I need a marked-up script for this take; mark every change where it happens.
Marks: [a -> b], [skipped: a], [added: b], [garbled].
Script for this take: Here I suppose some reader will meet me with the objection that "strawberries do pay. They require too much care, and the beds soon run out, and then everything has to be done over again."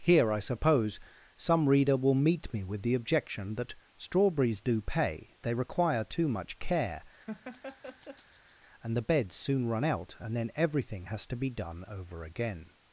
Here I suppose some reader will meet me with the objection that "strawberries do pay. They require too much care, and the beds soon run out, and then everything has to be done over again."